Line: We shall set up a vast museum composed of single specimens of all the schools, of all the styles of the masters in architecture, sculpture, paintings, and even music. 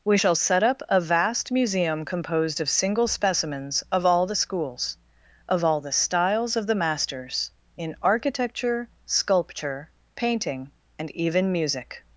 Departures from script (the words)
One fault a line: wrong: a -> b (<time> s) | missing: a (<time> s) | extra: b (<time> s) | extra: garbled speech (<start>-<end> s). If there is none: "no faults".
wrong: paintings -> painting (10.1 s)